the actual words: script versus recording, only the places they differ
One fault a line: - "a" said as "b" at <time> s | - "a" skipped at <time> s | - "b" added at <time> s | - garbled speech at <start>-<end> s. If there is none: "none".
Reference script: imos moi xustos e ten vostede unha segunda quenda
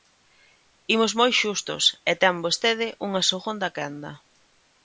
none